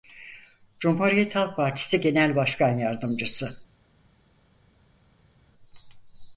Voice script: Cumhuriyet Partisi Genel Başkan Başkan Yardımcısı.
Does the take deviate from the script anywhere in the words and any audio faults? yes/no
yes